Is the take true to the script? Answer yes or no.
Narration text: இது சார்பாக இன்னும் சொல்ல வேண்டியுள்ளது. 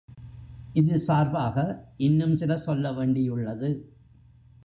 no